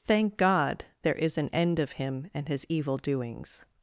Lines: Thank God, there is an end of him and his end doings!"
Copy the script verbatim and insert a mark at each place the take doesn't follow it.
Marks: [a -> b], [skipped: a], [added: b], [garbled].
Thank God, there is an end of him and his [end -> evil] doings!"